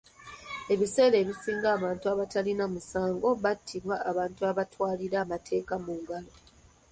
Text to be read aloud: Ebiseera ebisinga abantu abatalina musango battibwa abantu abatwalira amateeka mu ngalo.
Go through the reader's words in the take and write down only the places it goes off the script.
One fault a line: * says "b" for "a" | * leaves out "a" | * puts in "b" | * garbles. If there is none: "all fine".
all fine